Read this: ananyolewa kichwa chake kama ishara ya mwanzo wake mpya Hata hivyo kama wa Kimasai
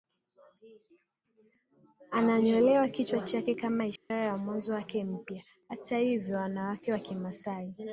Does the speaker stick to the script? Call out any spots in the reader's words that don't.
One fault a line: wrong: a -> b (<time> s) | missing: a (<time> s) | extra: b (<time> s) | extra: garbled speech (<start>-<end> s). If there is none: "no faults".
wrong: kama -> wanawake (6.4 s)